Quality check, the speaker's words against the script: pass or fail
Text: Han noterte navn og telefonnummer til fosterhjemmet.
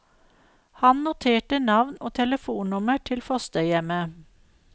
pass